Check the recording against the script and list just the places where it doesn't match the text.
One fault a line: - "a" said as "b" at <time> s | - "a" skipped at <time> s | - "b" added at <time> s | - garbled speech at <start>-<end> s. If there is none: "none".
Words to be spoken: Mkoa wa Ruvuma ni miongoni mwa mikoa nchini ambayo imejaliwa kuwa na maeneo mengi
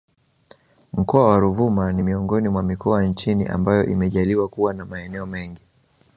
none